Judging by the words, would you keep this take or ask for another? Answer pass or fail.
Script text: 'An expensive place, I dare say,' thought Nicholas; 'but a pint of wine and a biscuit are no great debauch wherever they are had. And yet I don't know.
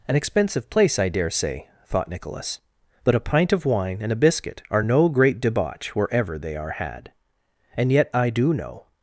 fail